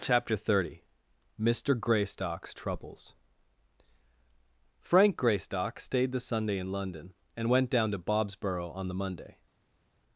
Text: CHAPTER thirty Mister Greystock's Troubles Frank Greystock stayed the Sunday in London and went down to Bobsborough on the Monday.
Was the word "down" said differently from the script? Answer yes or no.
no